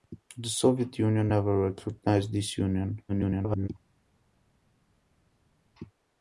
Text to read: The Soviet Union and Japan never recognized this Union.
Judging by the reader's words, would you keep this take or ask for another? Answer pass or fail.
fail